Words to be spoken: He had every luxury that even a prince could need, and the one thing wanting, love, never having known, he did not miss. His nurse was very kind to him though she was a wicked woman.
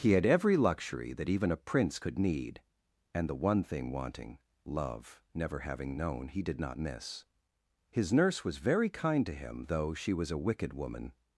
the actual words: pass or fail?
pass